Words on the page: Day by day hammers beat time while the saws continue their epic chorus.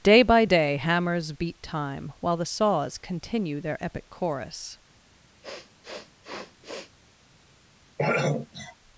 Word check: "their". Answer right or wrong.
right